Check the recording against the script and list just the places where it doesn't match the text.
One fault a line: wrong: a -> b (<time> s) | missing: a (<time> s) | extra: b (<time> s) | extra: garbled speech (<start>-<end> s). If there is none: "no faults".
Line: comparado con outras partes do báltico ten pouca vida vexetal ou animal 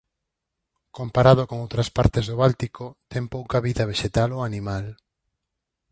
no faults